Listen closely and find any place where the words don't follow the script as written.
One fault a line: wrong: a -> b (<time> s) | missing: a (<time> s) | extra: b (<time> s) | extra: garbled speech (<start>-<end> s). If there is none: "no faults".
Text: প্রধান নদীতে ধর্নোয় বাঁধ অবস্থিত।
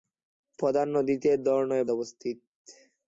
missing: বাঁধ (1.9 s)